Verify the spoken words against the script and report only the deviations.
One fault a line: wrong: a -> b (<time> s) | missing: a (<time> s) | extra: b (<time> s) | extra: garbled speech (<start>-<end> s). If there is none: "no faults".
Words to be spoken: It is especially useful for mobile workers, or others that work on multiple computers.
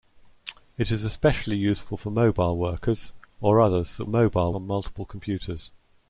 wrong: work -> mobile (4.1 s)